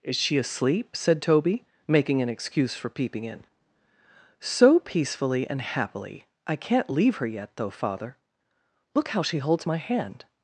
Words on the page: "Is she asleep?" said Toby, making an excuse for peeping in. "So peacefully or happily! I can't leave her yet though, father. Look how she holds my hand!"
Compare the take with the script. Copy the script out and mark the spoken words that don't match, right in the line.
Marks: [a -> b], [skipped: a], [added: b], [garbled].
"Is she asleep?" said Toby, making an excuse for peeping in. "So peacefully [or -> and] happily! I can't leave her yet though, father. Look how she holds my hand!"